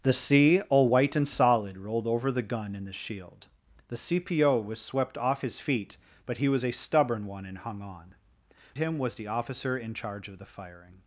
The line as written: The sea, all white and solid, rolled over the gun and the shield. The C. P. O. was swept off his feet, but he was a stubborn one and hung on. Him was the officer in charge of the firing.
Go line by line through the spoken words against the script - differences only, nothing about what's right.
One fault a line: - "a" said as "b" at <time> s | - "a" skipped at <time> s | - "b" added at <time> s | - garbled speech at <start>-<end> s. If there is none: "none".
none